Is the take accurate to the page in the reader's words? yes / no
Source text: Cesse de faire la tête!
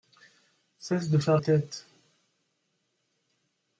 no